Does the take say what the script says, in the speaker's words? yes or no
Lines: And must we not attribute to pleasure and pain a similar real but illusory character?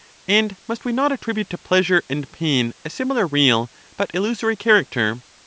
yes